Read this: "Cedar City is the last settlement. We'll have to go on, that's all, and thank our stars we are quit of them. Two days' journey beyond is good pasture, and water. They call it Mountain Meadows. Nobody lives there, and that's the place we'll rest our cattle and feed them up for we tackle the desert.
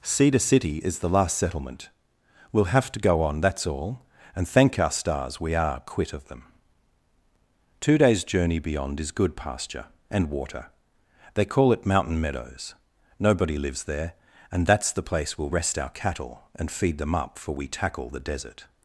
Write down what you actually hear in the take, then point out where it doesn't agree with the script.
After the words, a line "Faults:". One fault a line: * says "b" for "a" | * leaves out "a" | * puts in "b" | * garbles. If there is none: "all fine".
"Cedar City is the last settlement. We'll have to go on, that's all, and thank our stars we are quit of them. Two days' journey beyond is good pasture, and water. They call it Mountain Meadows. Nobody lives there, and that's the place we'll rest our cattle and feed them up for we tackle the desert.
Faults:
all fine